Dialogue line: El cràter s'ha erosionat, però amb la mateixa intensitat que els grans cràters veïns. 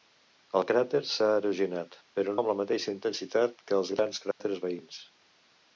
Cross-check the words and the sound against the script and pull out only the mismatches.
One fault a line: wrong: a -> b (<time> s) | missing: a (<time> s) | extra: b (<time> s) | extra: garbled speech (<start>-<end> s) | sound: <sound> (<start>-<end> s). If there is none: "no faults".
sound: dropout (4.3-4.4 s)